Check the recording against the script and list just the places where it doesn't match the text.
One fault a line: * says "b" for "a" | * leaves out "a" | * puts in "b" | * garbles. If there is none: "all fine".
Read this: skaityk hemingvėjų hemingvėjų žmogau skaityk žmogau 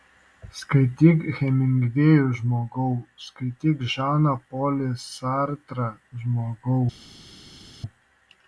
* leaves out "hemingvėjų"
* puts in "žaną polį sartrą"